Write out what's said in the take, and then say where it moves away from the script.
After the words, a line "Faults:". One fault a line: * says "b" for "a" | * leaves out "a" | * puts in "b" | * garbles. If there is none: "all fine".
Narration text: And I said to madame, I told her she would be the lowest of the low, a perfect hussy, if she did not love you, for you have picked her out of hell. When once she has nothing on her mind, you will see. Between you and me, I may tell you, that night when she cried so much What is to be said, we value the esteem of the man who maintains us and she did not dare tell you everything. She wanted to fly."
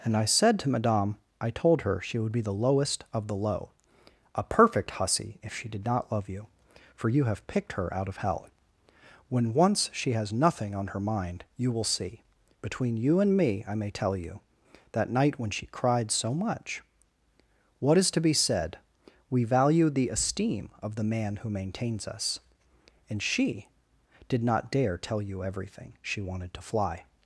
And I said to madame, I told her she would be the lowest of the low, a perfect hussy, if she did not love you, for you have picked her out of hell. When once she has nothing on her mind, you will see. Between you and me, I may tell you, that night when she cried so much What is to be said, we value the esteem of the man who maintains us and she did not dare tell you everything. She wanted to fly."
Faults:
all fine